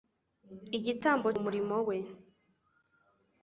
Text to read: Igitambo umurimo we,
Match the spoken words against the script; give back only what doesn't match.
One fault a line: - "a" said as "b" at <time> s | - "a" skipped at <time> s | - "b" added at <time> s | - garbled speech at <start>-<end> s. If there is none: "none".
none